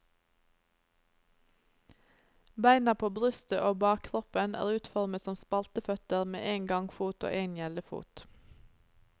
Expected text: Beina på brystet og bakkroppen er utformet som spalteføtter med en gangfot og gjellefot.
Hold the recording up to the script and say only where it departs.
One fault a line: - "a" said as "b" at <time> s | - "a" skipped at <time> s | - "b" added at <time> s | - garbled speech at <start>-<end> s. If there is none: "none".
- "en" added at 7.4 s